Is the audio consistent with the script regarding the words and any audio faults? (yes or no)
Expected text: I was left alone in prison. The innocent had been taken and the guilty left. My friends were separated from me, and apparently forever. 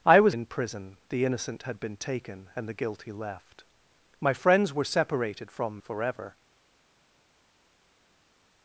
no